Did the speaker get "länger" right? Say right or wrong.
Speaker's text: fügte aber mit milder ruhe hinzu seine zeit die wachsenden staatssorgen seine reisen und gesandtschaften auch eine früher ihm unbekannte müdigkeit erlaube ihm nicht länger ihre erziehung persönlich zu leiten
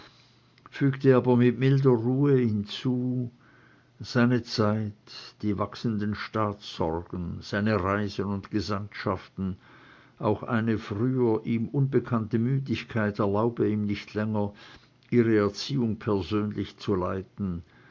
right